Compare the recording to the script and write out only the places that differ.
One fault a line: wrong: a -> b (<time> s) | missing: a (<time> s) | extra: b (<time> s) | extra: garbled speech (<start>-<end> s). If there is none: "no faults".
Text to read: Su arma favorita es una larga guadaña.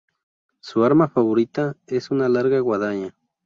no faults